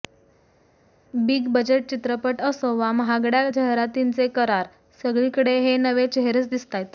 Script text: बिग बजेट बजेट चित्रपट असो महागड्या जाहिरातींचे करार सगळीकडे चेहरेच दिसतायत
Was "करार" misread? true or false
false